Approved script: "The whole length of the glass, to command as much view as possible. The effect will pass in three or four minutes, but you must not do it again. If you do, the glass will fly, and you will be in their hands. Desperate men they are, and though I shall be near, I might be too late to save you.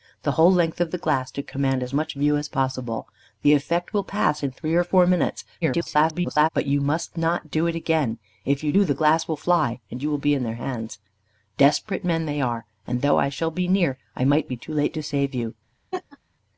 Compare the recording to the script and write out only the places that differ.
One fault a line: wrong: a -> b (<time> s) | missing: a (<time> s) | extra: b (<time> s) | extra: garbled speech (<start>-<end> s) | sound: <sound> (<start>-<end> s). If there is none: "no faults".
extra: garbled speech (5.6-6.5 s)
sound: laugh (15.9-16.2 s)